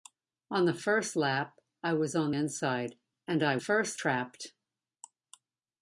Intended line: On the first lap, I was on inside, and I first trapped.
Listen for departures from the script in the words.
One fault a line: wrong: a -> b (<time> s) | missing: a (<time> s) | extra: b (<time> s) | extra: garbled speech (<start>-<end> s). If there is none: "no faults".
no faults